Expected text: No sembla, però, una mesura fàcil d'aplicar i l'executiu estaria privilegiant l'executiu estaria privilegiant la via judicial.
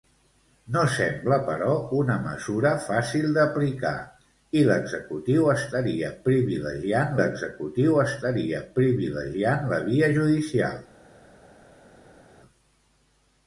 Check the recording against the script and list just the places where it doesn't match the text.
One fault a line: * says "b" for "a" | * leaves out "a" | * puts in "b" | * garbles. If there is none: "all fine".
all fine